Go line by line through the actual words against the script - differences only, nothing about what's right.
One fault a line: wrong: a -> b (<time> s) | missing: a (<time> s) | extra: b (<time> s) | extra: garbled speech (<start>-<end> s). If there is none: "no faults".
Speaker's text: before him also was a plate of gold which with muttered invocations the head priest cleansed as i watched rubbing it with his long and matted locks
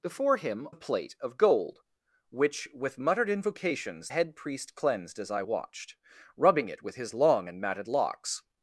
missing: also was (0.7 s)
missing: the (4.1 s)